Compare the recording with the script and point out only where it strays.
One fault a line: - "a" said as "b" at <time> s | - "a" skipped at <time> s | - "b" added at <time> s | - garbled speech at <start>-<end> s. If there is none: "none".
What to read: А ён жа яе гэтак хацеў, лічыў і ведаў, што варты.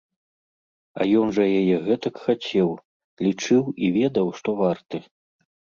none